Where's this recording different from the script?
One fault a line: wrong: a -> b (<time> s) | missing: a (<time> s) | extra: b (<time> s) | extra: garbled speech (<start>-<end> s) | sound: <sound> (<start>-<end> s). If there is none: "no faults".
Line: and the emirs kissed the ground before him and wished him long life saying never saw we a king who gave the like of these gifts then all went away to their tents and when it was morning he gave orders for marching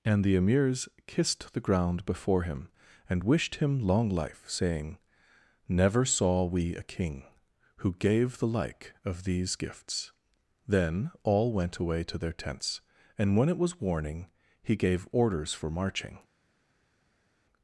wrong: morning -> warning (13.8 s)